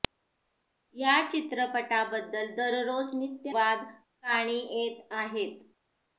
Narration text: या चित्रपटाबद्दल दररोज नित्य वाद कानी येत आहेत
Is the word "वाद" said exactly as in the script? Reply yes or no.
yes